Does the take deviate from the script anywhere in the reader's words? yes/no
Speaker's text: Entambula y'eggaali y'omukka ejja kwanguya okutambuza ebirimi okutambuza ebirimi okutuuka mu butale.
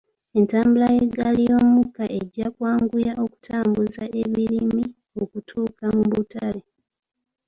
yes